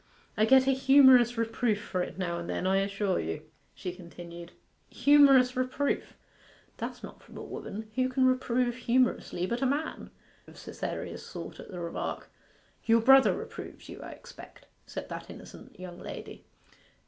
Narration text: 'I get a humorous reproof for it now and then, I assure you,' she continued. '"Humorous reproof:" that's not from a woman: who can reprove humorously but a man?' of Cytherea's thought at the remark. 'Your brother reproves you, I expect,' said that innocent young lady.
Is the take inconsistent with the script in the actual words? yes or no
no